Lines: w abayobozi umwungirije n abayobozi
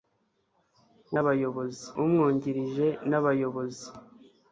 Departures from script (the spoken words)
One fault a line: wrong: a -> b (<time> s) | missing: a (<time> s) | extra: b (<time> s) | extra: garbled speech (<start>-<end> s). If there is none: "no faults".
no faults